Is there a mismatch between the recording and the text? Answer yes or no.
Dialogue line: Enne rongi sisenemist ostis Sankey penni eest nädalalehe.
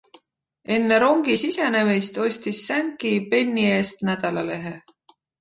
no